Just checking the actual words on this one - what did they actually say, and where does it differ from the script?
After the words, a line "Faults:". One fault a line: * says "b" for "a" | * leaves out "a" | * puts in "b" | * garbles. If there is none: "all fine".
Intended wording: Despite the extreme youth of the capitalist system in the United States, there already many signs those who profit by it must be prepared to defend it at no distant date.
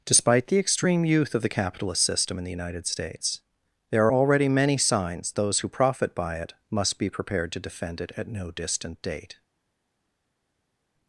Despite the extreme youth of the capitalist system in the United States, there already many signs those who profit by it must be prepared to defend it at no distant date.
Faults:
all fine